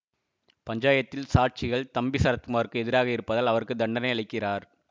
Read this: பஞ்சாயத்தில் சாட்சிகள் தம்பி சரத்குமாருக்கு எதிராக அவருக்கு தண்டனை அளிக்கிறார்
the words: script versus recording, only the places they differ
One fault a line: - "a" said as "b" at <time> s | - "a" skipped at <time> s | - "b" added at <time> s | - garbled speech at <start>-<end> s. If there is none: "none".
- "இருப்பதால்" added at 3.1 s